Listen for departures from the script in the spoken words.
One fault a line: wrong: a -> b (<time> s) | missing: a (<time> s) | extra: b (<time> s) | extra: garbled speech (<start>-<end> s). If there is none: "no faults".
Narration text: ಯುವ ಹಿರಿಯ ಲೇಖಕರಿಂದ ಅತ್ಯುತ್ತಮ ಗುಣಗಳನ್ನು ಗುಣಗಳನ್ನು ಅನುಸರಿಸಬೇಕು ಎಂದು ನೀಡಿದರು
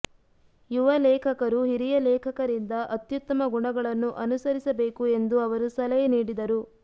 extra: ಲೇಖಕರು (1.0 s)
missing: ಗುಣಗಳನ್ನು (4.1 s)
extra: ಅವರು ಸಲಹೆ (5.4 s)